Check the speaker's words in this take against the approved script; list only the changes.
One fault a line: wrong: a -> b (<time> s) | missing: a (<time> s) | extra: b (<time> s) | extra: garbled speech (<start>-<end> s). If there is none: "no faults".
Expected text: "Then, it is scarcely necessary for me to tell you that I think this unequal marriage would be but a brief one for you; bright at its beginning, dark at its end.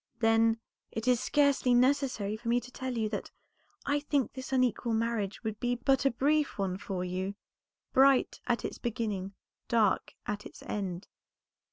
no faults